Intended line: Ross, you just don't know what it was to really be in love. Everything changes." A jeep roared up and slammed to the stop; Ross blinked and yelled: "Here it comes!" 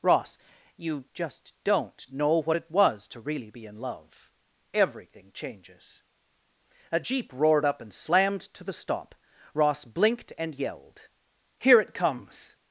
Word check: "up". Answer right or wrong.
right